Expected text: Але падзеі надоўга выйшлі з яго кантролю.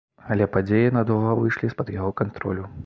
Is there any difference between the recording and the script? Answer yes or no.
yes